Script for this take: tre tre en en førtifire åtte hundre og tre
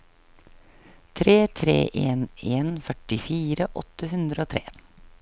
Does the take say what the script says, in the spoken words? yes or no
yes